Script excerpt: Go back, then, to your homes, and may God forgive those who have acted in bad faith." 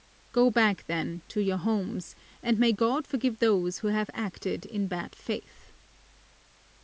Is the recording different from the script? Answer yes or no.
no